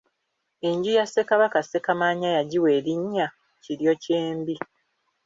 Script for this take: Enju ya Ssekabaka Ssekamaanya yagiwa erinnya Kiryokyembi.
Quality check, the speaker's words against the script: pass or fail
pass